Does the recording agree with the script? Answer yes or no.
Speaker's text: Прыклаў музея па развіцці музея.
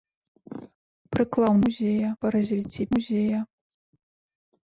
yes